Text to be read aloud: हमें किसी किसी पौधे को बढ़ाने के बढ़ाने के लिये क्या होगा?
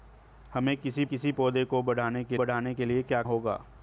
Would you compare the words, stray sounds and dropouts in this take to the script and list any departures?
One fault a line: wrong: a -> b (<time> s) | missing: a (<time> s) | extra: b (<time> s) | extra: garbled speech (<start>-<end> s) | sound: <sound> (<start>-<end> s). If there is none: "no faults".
no faults